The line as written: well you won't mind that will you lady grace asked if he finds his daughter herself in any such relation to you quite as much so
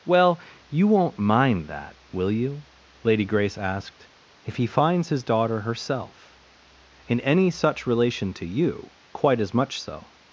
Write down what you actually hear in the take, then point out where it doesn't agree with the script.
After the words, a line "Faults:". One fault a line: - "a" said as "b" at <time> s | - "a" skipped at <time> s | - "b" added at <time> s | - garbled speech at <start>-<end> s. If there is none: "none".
well you won't mind that will you lady grace asked if he finds his daughter herself in any such relation to you quite as much so
Faults:
none